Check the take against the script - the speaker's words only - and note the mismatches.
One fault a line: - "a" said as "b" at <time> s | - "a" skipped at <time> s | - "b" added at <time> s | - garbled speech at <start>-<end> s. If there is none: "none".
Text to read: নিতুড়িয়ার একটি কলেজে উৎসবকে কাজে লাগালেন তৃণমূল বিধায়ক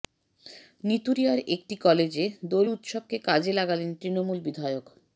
- "দোল" added at 2.5 s